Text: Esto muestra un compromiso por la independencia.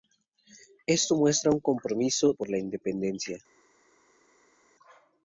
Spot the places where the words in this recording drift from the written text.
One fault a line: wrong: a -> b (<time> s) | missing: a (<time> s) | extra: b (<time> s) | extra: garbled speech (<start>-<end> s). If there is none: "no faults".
no faults